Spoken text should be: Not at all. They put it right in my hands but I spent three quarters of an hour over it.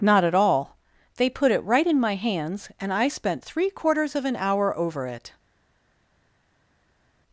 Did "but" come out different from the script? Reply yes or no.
yes